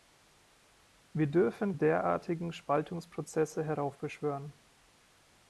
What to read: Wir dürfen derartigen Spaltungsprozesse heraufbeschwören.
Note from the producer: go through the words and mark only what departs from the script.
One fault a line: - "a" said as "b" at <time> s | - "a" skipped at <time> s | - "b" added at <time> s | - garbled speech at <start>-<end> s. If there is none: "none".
none